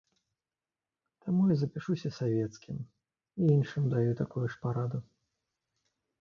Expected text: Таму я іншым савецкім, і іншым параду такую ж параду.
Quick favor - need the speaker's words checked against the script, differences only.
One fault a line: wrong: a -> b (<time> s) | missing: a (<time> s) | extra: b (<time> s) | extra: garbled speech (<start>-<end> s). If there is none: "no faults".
wrong: іншым -> запішуся (1.6 s)
wrong: параду -> даю (4.0 s)